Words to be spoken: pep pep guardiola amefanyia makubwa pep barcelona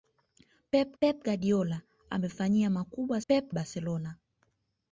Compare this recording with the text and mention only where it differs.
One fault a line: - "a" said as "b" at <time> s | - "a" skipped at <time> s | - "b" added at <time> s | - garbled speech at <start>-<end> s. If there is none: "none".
none